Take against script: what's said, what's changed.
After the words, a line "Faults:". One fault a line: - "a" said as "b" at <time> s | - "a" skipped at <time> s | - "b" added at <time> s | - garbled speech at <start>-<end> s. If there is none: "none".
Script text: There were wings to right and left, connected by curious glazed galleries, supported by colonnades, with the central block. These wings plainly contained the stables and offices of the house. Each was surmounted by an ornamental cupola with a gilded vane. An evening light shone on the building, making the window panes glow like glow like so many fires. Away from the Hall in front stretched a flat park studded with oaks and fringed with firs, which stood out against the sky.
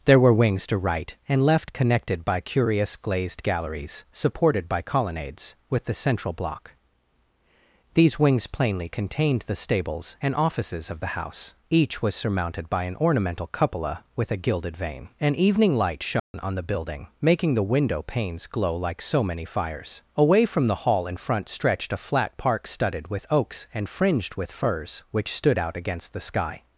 There were wings to right and left, connected by curious glazed galleries, supported by colonnades, with the central block. These wings plainly contained the stables and offices of the house. Each was surmounted by an ornamental cupola with a gilded vane. An evening light shone on the building, making the window panes glow like so many fires. Away from the Hall in front stretched a flat park studded with oaks and fringed with firs, which stood out against the sky.
Faults:
- "glow like" skipped at 19.0 s